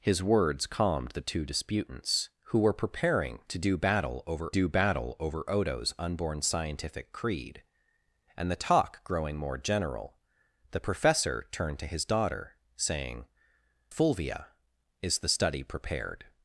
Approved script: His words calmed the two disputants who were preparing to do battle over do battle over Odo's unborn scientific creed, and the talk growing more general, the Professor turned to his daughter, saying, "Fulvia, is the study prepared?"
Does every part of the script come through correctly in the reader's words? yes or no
yes